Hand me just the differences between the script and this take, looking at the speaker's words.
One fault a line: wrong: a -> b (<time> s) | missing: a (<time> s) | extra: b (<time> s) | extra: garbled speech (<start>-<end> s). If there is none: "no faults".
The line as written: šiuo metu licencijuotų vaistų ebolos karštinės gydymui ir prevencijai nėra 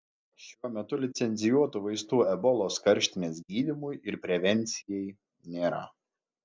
no faults